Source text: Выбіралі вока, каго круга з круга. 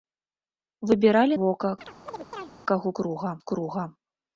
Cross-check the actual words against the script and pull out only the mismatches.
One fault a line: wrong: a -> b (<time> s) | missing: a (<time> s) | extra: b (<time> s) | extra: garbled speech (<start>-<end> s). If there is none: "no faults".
no faults